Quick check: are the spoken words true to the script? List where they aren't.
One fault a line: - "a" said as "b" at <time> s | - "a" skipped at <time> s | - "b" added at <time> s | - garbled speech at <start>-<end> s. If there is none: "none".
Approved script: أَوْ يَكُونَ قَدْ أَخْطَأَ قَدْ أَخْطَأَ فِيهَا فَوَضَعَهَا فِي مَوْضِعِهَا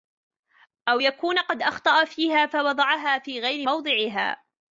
- "قَدْ أَخْطَأَ" skipped at 2.0 s
- "غَيْرِ" added at 3.4 s